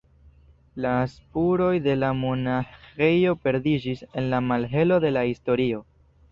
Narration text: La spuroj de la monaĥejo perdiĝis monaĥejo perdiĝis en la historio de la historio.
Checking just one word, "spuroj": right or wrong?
right